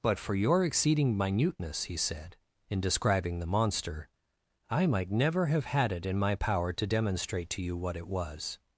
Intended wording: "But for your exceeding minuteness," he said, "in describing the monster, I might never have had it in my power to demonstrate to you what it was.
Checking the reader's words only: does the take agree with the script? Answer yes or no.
yes